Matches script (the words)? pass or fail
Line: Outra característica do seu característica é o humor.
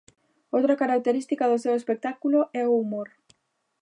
fail